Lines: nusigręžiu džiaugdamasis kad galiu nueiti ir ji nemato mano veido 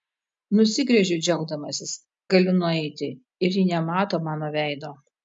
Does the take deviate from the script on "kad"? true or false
true